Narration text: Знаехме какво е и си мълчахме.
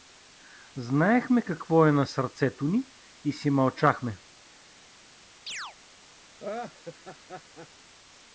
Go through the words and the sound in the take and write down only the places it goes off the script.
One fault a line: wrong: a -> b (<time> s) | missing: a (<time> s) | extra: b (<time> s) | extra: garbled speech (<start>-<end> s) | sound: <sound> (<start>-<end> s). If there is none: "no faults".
extra: на сърцето ни (1.9 s)
sound: chirp (5.5-5.8 s)
sound: laugh (6.4-7.7 s)